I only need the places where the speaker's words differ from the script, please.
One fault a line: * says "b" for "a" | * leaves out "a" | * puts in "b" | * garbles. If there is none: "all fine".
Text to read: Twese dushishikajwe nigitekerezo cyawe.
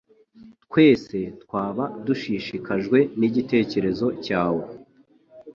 * puts in "twaba"